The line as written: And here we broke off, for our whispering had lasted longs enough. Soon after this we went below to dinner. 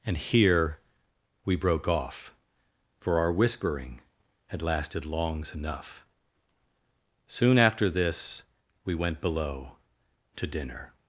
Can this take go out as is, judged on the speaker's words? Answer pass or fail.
pass